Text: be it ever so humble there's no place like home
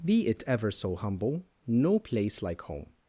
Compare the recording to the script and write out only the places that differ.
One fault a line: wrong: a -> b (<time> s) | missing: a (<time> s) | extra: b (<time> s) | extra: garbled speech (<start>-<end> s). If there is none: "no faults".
missing: there's (1.4 s)